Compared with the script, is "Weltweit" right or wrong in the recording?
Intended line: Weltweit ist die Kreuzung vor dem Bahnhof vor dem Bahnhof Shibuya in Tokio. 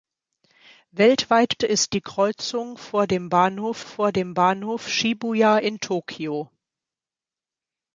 right